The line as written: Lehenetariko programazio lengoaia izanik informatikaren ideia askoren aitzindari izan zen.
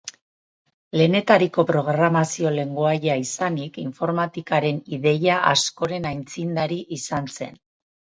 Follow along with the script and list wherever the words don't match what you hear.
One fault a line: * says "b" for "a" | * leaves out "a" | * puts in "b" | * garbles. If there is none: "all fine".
all fine